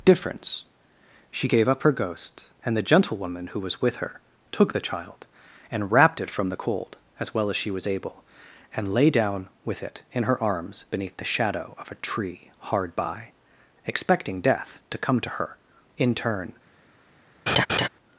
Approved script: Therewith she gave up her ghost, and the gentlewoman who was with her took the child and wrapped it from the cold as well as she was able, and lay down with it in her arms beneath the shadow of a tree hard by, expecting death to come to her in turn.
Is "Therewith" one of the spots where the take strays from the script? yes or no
yes